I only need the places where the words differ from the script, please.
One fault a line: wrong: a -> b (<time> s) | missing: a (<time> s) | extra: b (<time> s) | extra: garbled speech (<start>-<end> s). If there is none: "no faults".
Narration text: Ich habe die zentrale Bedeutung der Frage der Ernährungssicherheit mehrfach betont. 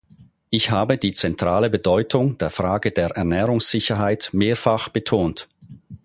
no faults